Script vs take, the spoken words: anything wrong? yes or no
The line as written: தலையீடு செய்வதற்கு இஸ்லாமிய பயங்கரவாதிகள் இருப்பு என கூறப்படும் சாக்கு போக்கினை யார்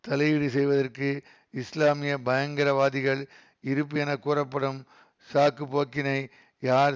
no